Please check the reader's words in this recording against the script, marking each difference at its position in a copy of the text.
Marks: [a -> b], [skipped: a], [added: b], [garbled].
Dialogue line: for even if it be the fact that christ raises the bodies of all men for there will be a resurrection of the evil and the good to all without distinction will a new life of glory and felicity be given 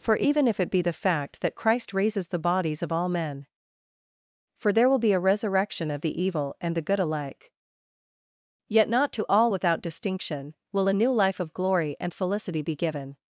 for even if it be the fact that christ raises the bodies of all men for there will be a resurrection of the evil and the good [added: alike yet not] to all without distinction will a new life of glory and felicity be given